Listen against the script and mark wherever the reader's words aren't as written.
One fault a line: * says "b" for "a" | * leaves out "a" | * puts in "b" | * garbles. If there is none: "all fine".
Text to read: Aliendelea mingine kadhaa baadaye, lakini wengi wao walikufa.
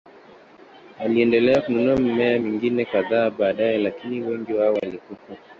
* puts in "kununua mimea"